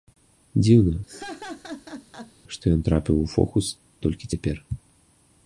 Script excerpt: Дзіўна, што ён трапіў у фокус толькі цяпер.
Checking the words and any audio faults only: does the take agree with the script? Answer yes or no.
no